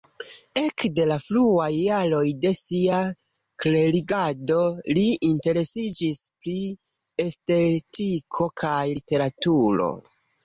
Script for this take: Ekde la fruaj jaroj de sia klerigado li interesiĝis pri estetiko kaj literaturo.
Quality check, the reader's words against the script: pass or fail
pass